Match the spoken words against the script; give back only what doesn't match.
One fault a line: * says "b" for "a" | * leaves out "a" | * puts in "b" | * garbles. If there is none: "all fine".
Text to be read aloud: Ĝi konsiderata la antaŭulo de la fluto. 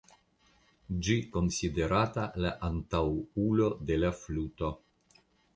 all fine